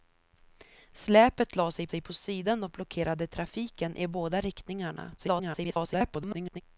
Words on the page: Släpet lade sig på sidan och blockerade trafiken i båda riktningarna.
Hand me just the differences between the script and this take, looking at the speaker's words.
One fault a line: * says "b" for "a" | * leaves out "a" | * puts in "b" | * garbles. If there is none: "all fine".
* puts in "sig"
* garbles